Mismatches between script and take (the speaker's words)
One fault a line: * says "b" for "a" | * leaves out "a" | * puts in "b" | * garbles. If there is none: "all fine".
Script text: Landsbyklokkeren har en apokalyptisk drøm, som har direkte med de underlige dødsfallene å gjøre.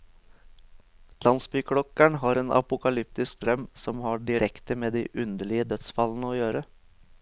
all fine